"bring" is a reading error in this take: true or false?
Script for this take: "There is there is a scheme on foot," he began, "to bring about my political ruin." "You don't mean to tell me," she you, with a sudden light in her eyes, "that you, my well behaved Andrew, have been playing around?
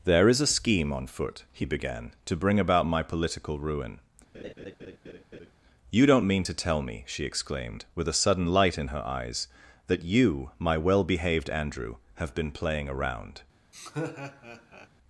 false